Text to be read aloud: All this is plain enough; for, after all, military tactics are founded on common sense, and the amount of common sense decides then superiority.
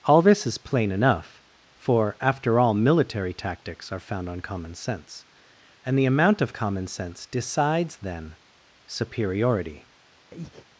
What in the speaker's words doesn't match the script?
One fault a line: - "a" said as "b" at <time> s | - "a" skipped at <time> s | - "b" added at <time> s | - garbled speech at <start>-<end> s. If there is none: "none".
- "founded" said as "found" at 4.0 s